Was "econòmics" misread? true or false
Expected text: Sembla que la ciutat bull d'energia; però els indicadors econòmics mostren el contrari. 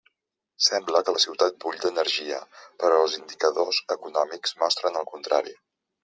false